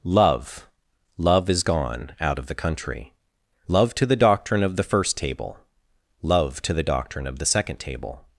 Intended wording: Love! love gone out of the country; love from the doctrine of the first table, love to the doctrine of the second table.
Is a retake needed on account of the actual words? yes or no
yes